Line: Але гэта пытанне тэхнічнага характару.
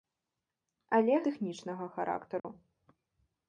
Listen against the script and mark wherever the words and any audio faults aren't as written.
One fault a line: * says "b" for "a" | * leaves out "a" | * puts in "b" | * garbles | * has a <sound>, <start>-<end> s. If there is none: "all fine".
* leaves out "гэта пытанне"
* has a dropout, 2.4-2.4 s